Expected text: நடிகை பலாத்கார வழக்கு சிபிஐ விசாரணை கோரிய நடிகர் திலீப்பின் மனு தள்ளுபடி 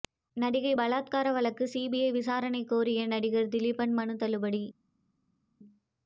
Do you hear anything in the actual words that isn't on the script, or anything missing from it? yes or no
no